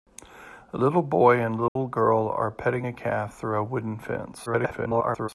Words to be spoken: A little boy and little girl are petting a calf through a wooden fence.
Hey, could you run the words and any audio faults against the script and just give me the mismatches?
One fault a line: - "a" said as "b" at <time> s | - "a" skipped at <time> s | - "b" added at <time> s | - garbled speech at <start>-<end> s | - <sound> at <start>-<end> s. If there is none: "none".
- dropout at 1.7-1.8 s
- garbled speech at 4.5-5.3 s